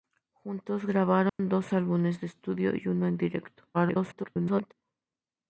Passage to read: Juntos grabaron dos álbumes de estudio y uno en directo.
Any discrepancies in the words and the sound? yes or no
yes